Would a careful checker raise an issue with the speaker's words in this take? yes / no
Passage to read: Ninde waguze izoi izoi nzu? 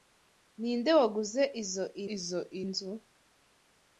no